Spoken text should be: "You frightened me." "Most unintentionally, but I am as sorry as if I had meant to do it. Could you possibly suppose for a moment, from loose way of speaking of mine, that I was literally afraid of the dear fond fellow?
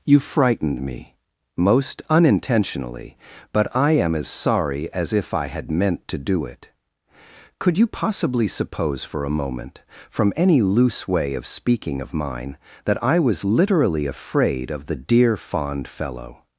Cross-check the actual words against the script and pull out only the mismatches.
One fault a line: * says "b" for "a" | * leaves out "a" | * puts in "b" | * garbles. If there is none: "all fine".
* puts in "any"